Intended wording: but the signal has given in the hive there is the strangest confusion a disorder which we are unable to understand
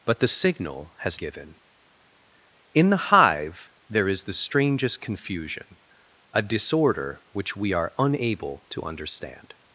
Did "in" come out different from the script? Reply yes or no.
no